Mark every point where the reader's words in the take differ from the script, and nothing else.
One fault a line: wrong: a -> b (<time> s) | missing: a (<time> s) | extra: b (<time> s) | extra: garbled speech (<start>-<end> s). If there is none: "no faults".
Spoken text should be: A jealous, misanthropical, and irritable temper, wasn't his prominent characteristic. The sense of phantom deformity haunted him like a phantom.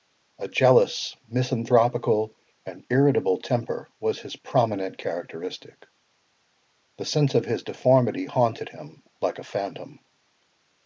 wrong: wasn't -> was (4.0 s)
wrong: phantom -> his (7.5 s)